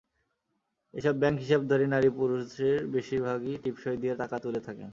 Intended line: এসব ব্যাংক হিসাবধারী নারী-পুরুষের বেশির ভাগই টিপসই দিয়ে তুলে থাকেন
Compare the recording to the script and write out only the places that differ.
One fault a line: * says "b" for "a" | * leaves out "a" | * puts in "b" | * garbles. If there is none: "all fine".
* puts in "টাকা"